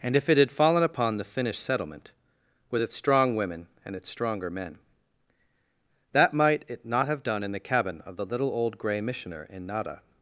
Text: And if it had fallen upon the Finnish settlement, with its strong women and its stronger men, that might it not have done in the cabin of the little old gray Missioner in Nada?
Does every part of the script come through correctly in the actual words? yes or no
yes